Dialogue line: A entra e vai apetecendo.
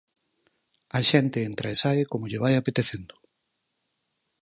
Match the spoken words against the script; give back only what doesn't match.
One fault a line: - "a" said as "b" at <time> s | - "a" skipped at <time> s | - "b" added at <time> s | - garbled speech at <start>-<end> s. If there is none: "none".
- "xente" added at 1.1 s
- "sae como lle" added at 1.8 s